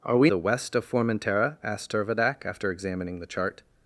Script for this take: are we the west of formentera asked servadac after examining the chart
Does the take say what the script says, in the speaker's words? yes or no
yes